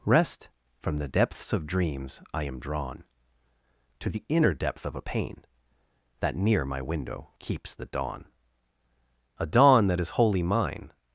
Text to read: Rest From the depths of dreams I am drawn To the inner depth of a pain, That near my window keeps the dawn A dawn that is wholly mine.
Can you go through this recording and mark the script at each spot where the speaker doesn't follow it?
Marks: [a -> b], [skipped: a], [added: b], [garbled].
Rest From the depths of dreams I am drawn To the inner depth of a pain, That near my window keeps the dawn A dawn that is wholly mine.